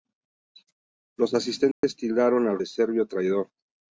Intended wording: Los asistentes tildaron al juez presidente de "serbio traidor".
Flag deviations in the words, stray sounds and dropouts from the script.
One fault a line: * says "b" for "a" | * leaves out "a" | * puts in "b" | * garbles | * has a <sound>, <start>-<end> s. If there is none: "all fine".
* has a dropout, 1.7-1.8 s
* leaves out "juez presidente"